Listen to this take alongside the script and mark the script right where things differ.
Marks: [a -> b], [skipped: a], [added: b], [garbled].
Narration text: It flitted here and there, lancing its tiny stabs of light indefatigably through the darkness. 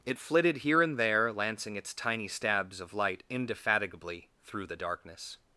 It flitted here and there, lancing its tiny stabs of light indefatigably through the darkness.